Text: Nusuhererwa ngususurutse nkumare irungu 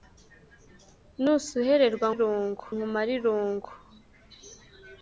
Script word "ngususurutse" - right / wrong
wrong